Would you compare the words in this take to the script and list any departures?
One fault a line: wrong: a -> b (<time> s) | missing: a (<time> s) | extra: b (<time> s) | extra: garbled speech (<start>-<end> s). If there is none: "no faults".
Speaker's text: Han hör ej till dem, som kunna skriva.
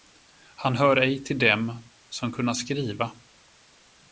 no faults